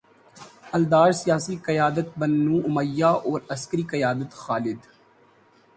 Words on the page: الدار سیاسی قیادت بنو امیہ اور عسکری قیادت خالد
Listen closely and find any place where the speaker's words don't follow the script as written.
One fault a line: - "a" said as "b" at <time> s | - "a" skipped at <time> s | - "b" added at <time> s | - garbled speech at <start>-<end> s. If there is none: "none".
none